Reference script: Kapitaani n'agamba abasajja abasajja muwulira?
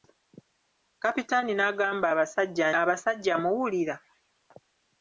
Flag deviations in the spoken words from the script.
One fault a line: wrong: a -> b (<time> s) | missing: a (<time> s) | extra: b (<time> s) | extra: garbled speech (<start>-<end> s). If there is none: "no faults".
no faults